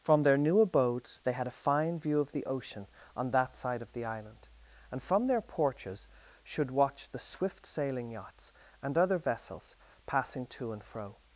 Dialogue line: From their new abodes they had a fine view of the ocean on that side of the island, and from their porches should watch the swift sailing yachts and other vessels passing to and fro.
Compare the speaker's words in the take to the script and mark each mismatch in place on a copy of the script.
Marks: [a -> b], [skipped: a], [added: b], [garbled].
From their new abodes they had a fine view of the ocean on that side of the island, and from their porches should watch the swift sailing yachts and other vessels passing to and fro.